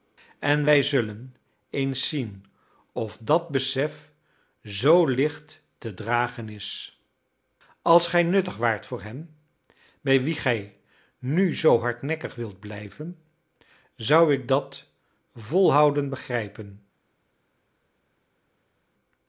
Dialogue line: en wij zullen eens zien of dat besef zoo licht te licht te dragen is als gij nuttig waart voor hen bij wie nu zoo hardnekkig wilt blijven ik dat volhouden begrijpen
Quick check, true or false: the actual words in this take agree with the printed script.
false